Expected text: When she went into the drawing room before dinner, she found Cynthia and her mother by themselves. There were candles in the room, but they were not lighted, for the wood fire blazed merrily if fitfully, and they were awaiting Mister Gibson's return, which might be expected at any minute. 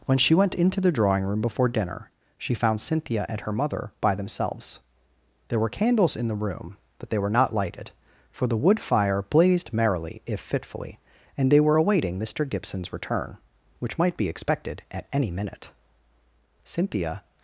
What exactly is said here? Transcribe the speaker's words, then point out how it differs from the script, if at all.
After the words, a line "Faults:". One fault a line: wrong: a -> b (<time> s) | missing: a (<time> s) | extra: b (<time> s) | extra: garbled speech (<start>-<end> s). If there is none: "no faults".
When she went into the drawing room before dinner, she found Cynthia and her mother by themselves. There were candles in the room, but they were not lighted, for the wood fire blazed merrily if fitfully, and they were awaiting Mister Gibson's return, which might be expected at any minute. Cynthia
Faults:
extra: Cynthia (16.6 s)